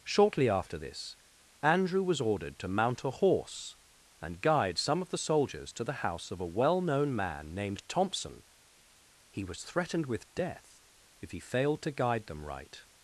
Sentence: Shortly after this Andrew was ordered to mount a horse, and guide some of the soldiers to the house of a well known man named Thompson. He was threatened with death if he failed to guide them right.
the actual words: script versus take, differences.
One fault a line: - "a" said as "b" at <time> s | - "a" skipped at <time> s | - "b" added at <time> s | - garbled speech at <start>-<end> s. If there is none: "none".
none